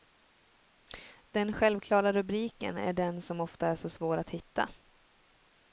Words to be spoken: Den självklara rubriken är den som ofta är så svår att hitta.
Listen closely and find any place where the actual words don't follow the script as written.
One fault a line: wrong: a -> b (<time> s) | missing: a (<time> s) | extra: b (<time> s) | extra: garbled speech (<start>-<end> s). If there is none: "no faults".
no faults